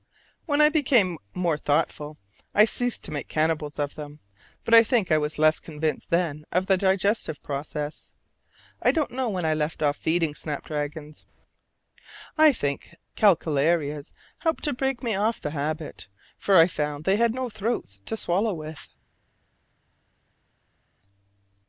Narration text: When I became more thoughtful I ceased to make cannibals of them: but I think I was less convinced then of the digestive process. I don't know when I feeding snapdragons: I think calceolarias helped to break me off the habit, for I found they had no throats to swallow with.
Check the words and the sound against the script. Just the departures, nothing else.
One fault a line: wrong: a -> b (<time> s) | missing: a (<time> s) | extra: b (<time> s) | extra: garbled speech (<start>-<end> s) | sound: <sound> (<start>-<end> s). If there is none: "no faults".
extra: left off (9.5 s)